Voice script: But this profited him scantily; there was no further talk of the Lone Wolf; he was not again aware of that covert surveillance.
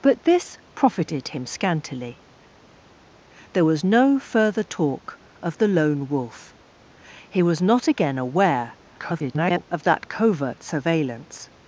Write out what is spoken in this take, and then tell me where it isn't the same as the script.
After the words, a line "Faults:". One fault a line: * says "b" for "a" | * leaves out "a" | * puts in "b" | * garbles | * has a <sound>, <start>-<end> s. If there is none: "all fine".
But this profited him scantily; there was no further talk of the Lone Wolf; he was not again aware [garbled] of that covert surveillance.
Faults:
* garbles